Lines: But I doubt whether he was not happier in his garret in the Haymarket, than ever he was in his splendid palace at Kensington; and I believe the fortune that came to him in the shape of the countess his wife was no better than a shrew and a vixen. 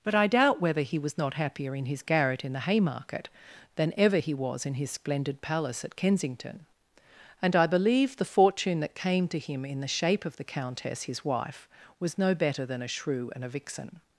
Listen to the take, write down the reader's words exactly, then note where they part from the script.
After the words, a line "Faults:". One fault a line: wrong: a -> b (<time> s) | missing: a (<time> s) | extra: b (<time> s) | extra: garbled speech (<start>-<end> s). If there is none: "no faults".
But I doubt whether he was not happier in his garret in the Haymarket, than ever he was in his splendid palace at Kensington; and I believe the fortune that came to him in the shape of the countess his wife was no better than a shrew and a vixen.
Faults:
no faults